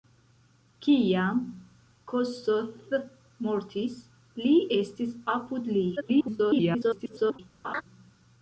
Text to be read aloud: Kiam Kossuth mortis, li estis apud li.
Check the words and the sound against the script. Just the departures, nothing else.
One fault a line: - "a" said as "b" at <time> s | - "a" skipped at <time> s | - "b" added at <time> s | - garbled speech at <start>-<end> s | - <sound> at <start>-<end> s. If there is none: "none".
- garbled speech at 6.0-7.4 s
- laugh at 7.6-7.8 s